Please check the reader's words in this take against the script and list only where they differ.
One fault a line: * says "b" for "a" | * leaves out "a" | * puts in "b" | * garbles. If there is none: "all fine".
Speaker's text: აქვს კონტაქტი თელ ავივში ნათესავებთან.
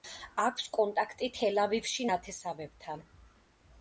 all fine